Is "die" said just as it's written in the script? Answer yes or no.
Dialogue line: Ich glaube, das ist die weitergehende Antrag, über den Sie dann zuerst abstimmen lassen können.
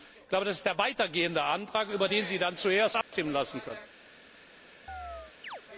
no